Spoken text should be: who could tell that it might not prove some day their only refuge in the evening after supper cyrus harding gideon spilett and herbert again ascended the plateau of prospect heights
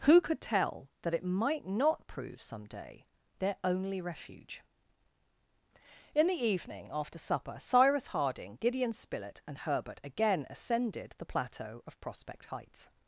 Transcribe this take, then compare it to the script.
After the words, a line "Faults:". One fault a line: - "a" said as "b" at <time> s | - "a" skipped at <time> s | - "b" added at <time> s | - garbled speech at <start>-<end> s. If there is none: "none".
who could tell that it might not prove some day their only refuge in the evening after supper cyrus harding gideon spilett and herbert again ascended the plateau of prospect heights
Faults:
none